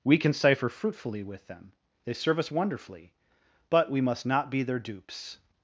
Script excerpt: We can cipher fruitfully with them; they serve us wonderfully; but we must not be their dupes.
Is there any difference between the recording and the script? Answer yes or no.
no